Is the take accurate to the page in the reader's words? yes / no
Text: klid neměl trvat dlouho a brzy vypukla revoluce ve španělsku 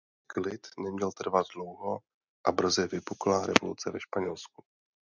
yes